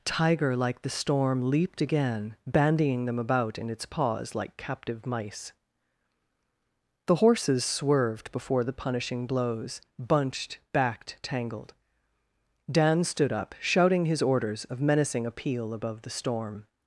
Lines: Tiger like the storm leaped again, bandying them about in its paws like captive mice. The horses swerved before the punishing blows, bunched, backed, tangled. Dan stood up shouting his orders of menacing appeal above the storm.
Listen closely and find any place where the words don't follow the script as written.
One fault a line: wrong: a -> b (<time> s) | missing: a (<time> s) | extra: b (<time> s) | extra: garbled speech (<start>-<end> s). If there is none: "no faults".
no faults